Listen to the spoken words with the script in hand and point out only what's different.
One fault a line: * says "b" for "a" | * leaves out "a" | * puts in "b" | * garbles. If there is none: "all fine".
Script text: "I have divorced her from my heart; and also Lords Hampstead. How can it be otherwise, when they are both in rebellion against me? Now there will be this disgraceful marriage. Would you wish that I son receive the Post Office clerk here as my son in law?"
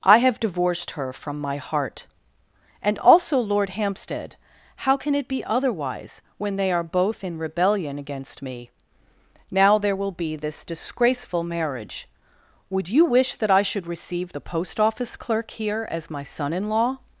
* says "Lord" for "Lords"
* says "should" for "son"